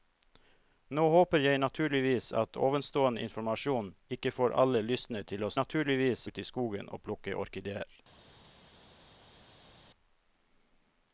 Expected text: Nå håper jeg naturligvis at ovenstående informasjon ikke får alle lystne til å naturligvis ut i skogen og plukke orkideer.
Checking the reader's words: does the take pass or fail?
pass